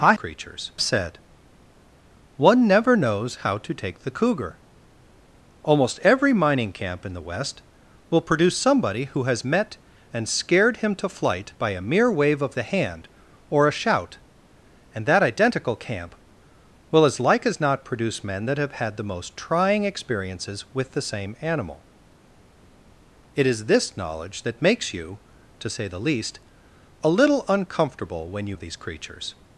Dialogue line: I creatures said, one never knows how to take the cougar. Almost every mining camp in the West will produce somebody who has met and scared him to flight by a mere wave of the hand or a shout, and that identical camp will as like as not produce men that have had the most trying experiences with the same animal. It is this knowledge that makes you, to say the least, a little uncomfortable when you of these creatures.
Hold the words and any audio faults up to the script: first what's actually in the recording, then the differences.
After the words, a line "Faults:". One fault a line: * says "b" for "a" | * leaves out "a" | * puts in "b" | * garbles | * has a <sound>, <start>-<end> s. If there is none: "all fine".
I creatures said, one never knows how to take the cougar. Almost every mining camp in the West will produce somebody who has met and scared him to flight by a mere wave of the hand or a shout, and that identical camp will as like as not produce men that have had the most trying experiences with the same animal. It is this knowledge that makes you, to say the least, a little uncomfortable when you of these creatures.
Faults:
all fine